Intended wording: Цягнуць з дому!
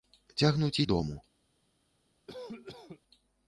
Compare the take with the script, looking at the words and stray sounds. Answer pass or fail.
fail